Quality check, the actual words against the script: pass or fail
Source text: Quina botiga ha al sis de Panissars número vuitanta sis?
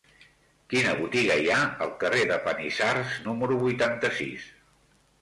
fail